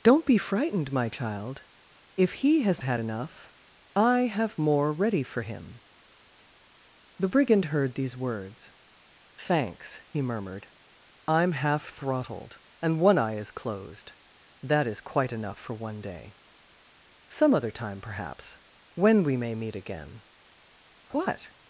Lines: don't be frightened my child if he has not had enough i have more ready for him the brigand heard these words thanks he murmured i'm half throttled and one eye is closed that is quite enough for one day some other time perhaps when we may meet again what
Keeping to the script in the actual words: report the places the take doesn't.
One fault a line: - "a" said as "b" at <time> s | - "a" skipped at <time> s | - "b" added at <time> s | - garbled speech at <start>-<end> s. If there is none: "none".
- "not" skipped at 2.8 s